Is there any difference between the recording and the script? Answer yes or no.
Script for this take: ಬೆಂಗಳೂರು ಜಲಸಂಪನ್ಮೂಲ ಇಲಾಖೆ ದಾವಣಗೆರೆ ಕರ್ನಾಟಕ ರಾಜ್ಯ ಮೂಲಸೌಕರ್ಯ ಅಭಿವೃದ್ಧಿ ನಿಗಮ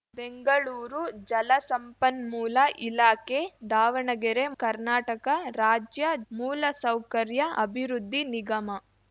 no